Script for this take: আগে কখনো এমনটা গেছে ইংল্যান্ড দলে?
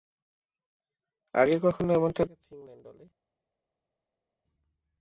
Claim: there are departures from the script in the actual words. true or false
false